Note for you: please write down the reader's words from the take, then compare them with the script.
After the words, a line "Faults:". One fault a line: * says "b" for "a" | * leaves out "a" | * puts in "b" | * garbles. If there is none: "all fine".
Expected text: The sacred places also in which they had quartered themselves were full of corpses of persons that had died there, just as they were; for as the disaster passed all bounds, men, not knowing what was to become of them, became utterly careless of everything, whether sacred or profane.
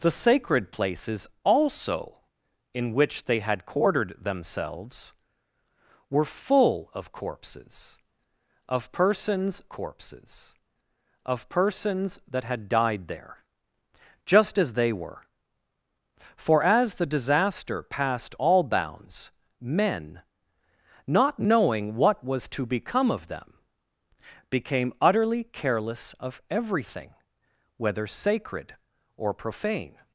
The sacred places also in which they had quartered themselves were full of corpses of persons corpses of persons that had died there, just as they were; for as the disaster passed all bounds, men, not knowing what was to become of them, became utterly careless of everything, whether sacred or profane.
Faults:
* puts in "corpses of persons"